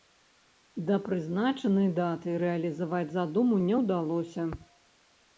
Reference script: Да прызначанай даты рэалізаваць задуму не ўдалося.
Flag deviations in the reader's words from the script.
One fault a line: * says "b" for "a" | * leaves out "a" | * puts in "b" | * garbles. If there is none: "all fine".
all fine